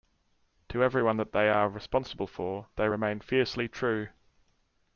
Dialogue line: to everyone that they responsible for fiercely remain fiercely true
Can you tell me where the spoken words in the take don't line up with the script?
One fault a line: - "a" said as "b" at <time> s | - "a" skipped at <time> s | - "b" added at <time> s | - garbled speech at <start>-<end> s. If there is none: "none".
- "are" added at 1.5 s
- "fiercely" said as "they" at 2.8 s